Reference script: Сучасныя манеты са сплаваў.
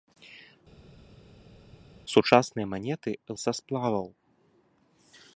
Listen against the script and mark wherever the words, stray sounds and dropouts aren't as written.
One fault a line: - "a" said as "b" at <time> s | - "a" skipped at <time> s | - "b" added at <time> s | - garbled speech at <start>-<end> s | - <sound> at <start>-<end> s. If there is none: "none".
none